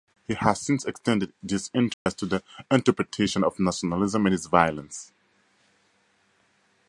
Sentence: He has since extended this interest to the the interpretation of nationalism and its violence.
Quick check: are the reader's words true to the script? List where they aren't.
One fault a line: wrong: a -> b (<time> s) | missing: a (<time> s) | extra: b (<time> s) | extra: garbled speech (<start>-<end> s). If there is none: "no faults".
missing: the (2.4 s)